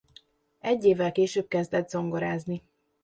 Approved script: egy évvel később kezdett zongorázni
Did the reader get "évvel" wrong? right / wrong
right